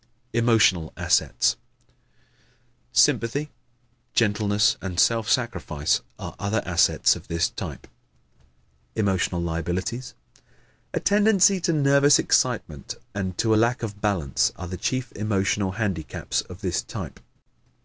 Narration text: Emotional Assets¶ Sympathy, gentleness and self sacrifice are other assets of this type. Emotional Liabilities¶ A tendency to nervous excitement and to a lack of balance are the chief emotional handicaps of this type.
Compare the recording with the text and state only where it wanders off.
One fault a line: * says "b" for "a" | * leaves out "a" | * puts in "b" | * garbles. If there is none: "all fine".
all fine